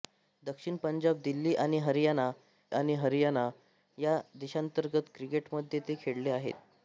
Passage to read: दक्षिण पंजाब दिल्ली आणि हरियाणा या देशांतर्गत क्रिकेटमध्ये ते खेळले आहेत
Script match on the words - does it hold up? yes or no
no